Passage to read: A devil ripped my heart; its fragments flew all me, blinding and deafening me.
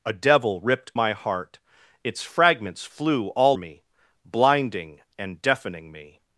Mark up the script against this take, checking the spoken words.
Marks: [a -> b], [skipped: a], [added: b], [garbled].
A devil ripped my heart; its fragments flew all me, blinding and deafening me.